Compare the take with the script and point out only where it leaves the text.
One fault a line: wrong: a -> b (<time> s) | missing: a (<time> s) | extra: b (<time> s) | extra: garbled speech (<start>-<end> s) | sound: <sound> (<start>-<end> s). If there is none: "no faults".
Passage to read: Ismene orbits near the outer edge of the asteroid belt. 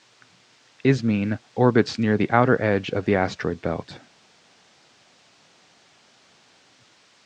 no faults